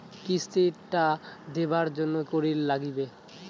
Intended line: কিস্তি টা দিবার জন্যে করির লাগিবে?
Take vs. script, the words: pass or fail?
pass